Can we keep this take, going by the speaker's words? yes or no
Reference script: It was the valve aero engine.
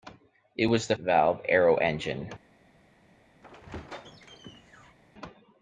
yes